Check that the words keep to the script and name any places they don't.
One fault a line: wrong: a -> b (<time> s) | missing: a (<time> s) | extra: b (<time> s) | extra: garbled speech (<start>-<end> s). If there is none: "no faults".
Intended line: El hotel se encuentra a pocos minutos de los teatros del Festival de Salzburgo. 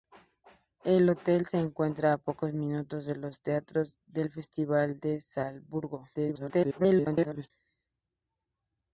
extra: garbled speech (6.1-7.5 s)